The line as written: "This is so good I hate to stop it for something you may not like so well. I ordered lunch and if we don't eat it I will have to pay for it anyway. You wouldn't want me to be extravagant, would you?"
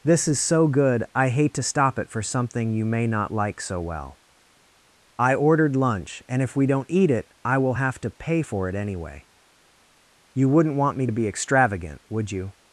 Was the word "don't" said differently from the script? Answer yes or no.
no